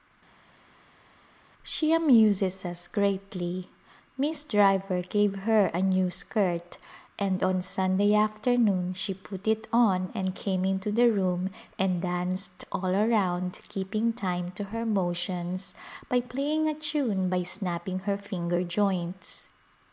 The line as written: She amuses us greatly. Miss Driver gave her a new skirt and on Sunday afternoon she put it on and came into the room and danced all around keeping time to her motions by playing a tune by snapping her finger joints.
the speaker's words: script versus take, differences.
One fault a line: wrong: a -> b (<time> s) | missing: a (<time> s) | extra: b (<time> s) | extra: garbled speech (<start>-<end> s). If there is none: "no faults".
no faults